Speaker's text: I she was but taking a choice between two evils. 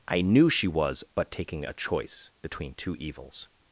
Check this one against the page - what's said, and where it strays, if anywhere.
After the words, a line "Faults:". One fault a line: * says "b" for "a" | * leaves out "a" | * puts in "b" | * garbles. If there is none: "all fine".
I knew she was but taking a choice between two evils.
Faults:
* puts in "knew"